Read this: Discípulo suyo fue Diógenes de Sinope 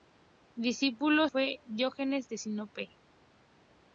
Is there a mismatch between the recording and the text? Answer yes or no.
yes